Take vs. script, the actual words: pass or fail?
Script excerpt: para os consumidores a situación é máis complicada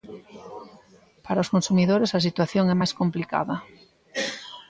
pass